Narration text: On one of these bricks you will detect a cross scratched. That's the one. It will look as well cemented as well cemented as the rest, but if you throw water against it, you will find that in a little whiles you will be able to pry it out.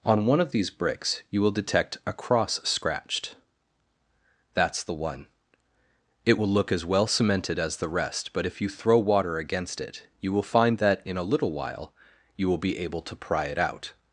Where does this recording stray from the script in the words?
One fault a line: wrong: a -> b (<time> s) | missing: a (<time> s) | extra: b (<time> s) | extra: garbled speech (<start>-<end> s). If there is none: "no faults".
missing: well cemented as (7.8 s)
wrong: whiles -> while (11.5 s)